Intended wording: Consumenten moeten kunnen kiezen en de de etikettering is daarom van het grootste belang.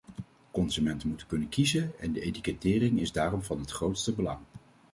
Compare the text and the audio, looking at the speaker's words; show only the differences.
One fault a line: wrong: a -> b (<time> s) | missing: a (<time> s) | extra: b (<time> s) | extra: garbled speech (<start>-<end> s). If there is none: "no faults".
missing: de (2.2 s)